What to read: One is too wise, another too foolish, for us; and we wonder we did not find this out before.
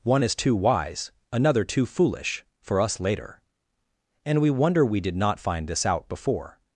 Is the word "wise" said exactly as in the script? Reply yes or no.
yes